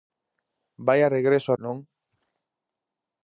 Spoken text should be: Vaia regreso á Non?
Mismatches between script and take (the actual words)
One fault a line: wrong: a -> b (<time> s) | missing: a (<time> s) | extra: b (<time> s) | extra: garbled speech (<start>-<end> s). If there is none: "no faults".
no faults